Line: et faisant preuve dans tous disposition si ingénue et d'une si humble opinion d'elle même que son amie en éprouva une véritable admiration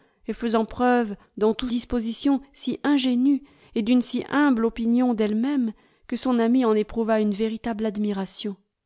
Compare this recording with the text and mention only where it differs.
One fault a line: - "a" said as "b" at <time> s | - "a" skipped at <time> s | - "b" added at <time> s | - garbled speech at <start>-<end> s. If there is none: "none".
none